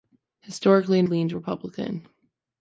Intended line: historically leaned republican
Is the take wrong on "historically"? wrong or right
right